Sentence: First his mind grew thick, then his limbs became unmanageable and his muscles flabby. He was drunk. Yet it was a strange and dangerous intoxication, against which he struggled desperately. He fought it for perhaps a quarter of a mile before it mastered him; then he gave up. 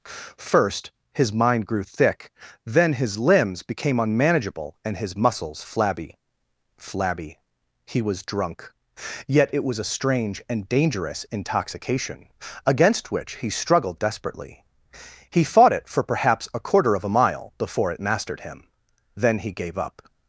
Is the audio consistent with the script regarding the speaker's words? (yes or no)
no